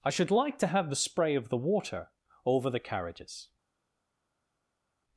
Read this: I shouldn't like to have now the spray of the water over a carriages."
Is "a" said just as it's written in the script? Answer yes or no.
no